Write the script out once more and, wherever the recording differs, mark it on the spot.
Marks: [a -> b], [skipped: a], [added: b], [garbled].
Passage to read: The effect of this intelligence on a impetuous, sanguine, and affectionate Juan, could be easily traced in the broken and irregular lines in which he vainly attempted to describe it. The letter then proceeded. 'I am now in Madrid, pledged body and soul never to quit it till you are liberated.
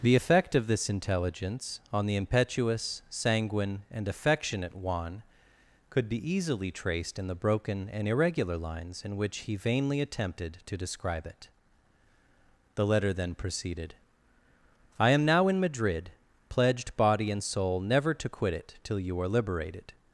The effect of this intelligence on [a -> the] impetuous, sanguine, and affectionate Juan, could be easily traced in the broken and irregular lines in which he vainly attempted to describe it. The letter then proceeded. 'I am now in Madrid, pledged body and soul never to quit it till you are liberated.